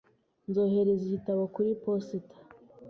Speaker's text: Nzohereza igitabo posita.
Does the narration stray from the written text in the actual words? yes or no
yes